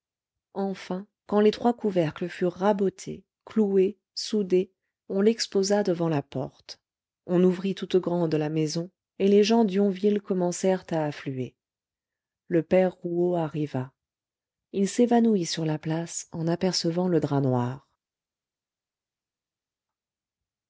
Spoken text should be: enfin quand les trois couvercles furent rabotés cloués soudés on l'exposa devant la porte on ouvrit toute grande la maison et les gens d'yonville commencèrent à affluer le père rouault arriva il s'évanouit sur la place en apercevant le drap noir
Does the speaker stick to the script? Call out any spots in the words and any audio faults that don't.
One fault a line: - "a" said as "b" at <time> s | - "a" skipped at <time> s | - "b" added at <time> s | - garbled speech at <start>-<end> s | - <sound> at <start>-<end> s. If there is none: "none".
none